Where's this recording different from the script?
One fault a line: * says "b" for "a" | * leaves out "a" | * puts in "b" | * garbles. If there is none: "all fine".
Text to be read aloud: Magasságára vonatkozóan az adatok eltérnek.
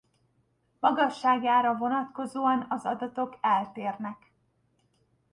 all fine